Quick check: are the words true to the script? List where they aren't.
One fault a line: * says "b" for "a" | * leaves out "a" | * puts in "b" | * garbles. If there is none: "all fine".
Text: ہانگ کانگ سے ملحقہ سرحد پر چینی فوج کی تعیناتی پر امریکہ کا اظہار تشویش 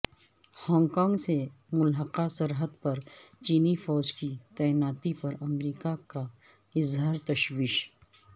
all fine